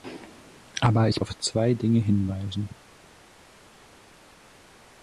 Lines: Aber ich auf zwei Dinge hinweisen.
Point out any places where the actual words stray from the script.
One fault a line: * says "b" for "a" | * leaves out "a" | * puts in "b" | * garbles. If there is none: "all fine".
all fine